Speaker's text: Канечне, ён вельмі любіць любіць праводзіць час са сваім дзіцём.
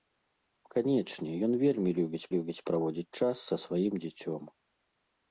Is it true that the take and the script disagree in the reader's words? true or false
false